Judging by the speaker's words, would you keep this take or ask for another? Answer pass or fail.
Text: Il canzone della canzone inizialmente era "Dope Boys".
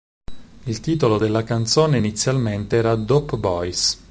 fail